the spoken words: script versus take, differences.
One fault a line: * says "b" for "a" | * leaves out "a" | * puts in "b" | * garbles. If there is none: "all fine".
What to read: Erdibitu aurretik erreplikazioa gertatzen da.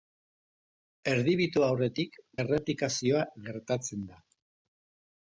all fine